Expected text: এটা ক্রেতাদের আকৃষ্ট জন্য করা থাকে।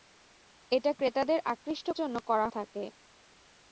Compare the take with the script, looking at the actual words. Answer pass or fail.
pass